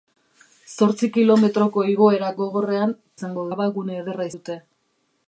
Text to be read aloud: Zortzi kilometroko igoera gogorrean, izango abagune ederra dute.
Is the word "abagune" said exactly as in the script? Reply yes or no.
yes